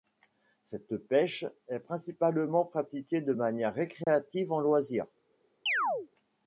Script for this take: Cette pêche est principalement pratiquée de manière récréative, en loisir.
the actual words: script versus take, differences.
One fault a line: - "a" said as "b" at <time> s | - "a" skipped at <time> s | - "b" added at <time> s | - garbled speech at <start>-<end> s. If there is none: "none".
none